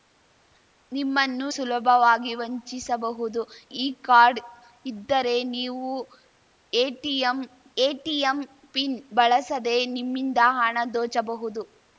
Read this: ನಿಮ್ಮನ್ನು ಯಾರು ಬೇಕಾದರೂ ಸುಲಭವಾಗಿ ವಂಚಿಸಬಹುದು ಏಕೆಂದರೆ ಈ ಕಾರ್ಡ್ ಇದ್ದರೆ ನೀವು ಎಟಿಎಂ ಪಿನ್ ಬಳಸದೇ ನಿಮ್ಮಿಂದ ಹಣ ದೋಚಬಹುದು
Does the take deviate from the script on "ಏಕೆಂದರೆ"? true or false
true